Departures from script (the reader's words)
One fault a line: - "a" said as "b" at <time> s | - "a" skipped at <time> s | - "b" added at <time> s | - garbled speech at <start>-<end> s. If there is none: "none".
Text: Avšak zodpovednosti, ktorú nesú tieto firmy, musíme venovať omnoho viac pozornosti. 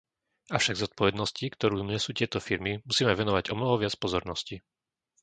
none